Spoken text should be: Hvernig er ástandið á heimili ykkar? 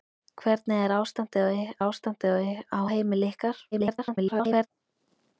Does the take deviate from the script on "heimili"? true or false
false